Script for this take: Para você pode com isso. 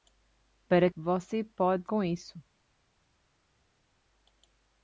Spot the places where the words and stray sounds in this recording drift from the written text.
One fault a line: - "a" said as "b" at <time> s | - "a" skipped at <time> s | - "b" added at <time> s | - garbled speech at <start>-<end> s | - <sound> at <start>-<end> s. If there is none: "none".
none